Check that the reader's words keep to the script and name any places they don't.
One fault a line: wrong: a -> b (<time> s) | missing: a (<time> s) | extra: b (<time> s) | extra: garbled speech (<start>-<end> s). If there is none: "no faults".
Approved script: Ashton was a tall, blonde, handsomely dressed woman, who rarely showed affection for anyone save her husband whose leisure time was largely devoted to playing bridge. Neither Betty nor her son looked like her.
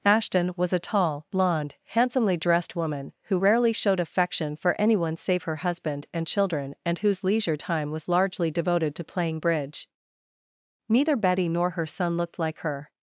extra: and children and (6.1 s)